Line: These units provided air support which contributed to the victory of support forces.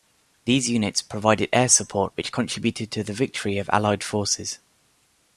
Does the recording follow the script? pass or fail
fail